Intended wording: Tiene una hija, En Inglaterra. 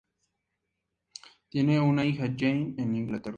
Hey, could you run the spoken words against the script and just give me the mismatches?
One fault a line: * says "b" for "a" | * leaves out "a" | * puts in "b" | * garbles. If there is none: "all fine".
* puts in "Jane"